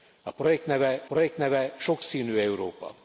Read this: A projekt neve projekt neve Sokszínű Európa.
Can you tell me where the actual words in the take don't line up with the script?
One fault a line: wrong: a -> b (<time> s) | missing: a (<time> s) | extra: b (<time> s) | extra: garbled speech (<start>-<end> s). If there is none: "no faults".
no faults